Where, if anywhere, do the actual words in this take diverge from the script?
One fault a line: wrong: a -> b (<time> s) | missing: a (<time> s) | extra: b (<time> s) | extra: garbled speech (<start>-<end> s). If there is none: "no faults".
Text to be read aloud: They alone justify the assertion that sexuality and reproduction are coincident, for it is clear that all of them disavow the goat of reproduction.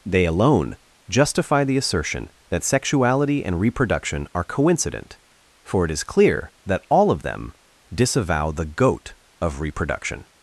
no faults